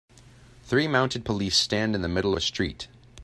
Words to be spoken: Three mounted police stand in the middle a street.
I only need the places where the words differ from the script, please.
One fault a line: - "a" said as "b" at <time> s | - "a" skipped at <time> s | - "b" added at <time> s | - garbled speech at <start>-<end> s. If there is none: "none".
none